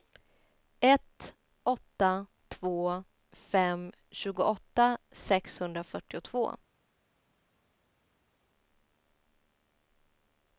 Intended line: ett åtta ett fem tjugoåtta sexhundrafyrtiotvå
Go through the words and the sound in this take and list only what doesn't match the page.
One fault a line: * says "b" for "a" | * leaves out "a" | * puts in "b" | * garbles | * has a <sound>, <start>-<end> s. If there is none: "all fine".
* says "två" for "ett"